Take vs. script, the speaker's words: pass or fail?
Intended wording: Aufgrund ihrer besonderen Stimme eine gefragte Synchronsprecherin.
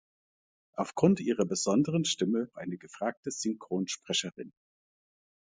pass